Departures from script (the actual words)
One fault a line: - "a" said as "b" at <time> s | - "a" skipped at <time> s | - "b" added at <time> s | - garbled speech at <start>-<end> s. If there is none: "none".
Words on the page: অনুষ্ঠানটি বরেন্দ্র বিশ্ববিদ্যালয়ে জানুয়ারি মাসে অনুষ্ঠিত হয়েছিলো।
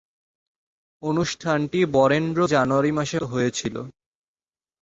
- "বিশ্ববিদ্যালয়ে" skipped at 2.4 s
- "অনুষ্ঠিত" skipped at 3.2 s